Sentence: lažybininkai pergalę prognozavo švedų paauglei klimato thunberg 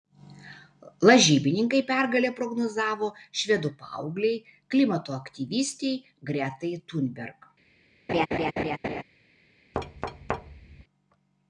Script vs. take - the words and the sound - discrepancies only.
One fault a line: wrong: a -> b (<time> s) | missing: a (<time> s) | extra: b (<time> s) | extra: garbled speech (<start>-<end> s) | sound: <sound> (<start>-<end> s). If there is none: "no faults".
extra: aktyvistei gretai (5.2 s)
sound: laugh (8.1-9.0 s)
sound: thud (9.7-10.8 s)